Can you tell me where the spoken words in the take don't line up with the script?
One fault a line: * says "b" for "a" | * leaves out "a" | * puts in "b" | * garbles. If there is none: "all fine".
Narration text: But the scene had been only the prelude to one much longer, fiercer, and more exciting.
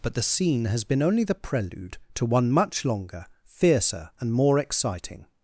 * says "has" for "had"